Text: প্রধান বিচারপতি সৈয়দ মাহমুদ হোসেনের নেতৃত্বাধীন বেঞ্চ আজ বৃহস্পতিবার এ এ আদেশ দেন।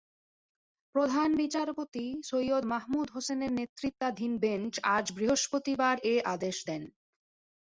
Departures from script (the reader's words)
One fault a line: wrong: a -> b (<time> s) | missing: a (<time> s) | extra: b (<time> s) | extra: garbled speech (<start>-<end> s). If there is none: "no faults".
missing: এ (6.2 s)